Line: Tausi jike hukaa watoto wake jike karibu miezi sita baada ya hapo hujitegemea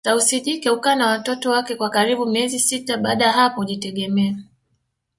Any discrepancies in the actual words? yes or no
yes